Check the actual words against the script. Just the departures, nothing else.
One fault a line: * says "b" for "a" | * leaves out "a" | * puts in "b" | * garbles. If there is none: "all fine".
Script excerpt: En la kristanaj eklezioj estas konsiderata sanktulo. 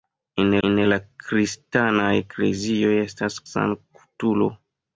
* puts in "en"
* leaves out "konsiderata"